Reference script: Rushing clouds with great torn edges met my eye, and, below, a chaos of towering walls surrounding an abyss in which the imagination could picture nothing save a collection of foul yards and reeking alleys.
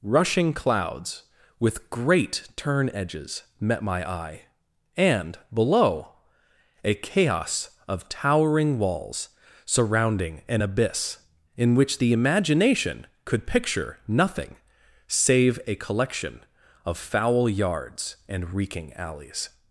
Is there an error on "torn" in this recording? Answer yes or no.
yes